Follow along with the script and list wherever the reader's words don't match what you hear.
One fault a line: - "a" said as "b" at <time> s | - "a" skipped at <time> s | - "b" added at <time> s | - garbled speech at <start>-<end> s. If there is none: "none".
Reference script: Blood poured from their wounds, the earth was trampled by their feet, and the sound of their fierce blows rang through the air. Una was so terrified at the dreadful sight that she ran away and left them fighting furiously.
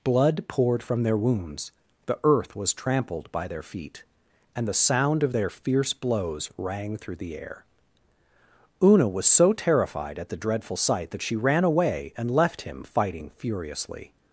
- "them" said as "him" at 12.6 s